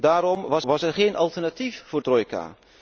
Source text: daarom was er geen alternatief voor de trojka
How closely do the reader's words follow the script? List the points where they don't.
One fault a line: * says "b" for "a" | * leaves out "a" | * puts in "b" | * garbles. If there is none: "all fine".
* puts in "was"
* leaves out "de"